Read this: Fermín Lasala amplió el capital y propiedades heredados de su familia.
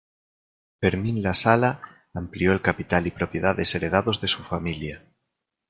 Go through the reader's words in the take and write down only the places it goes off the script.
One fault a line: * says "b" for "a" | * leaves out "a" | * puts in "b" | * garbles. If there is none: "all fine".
all fine